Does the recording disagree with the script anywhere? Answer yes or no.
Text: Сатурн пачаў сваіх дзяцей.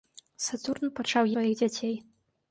no